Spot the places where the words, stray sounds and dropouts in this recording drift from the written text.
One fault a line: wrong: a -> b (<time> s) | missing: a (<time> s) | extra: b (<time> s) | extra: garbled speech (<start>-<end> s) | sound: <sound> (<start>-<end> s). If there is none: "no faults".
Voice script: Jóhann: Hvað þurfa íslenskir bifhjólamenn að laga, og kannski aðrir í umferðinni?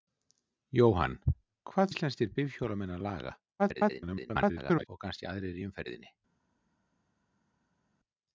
missing: þurfa (1.9 s)
extra: garbled speech (3.6-4.9 s)